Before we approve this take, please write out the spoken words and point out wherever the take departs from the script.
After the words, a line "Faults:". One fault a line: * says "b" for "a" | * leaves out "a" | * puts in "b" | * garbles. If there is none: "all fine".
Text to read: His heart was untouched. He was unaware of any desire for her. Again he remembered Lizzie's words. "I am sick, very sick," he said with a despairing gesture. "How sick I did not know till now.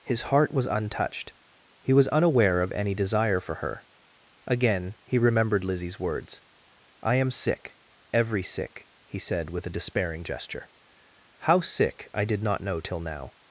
His heart was untouched. He was unaware of any desire for her. Again he remembered Lizzie's words. "I am sick, every sick," he said with a despairing gesture. "How sick I did not know till now.
Faults:
* says "every" for "very"